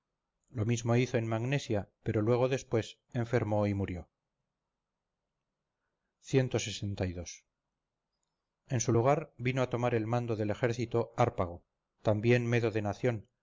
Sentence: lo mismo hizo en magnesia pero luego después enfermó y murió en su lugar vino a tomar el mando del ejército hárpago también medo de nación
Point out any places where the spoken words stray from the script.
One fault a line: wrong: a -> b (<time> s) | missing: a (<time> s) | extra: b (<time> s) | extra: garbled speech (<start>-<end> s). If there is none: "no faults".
no faults